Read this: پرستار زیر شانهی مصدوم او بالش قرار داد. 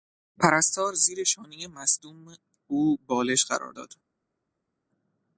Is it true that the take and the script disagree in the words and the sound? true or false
false